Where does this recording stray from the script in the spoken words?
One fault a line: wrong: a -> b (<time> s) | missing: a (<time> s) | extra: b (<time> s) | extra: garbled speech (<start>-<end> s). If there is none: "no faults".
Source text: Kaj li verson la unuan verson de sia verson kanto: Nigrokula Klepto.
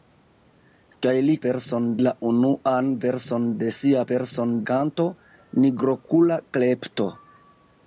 no faults